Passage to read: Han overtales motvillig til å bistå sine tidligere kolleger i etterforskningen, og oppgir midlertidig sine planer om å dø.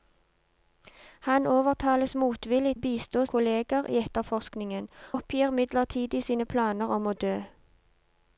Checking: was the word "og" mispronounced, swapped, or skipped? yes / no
yes